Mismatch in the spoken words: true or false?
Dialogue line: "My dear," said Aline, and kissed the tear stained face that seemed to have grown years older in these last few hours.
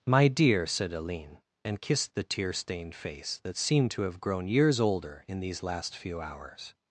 false